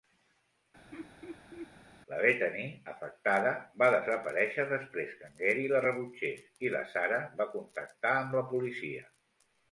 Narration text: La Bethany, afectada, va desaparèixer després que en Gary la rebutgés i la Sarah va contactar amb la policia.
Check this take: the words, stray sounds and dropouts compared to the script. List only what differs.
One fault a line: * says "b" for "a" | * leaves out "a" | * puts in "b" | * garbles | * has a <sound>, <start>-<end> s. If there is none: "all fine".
* has a laugh, 0.9-1.7 s